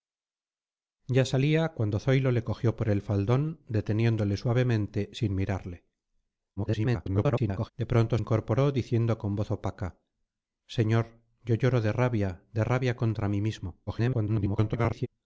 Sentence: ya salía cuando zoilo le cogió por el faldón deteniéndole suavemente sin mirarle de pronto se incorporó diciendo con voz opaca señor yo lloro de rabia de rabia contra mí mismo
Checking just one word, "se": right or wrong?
wrong